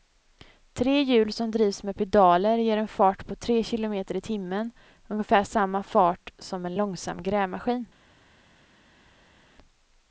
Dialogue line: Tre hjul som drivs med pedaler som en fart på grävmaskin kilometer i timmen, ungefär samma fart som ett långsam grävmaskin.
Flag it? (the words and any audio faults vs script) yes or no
yes